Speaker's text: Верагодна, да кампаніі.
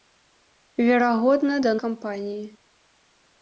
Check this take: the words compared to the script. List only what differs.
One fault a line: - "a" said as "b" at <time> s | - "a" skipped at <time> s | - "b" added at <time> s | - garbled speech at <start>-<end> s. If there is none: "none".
none